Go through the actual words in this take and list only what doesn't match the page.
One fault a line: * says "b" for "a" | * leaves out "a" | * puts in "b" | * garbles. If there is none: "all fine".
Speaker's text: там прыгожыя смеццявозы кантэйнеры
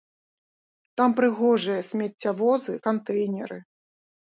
all fine